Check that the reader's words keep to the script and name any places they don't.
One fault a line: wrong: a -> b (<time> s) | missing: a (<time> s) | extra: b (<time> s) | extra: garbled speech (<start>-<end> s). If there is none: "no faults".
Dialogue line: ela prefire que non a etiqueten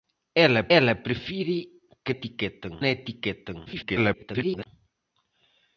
extra: ela (0.8 s)
wrong: non -> etiqueten (2.1 s)
extra: garbled speech (3.7-4.7 s)